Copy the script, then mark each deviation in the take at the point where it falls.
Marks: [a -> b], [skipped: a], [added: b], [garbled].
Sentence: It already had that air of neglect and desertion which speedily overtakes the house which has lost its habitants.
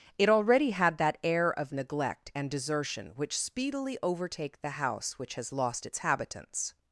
It already had that air of neglect and desertion which speedily [overtakes -> overtake] the house which has lost its habitants.